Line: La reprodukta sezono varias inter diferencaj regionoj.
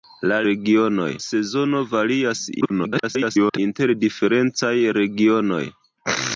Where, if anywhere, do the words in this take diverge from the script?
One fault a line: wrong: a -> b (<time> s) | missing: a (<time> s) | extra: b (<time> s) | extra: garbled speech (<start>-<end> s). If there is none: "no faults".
wrong: reprodukta -> regionoj (0.5 s)
extra: garbled speech (2.6-3.6 s)